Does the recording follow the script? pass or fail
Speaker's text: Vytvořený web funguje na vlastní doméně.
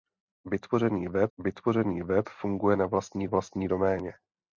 fail